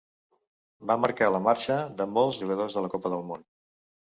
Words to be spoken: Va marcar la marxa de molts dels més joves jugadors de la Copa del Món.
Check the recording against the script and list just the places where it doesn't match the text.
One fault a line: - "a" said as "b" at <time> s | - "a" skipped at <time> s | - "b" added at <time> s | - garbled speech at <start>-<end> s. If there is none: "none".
- "dels més joves" skipped at 2.4 s